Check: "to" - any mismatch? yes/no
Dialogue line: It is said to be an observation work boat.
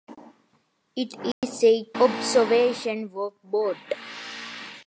yes